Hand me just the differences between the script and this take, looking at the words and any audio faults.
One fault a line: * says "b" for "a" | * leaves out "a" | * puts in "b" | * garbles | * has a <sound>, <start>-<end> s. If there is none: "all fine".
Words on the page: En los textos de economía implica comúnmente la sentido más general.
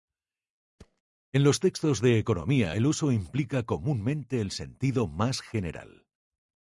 * has a thud, 0.8-1.0 s
* puts in "el uso"
* says "el" for "la"